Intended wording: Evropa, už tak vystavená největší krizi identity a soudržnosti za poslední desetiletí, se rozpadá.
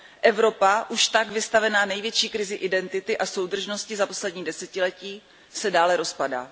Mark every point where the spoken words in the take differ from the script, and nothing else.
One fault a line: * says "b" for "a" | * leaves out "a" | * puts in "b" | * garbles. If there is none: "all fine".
* puts in "dále"